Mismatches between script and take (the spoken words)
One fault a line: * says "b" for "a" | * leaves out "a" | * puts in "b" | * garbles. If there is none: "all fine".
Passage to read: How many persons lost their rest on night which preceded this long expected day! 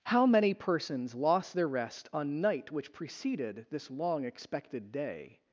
all fine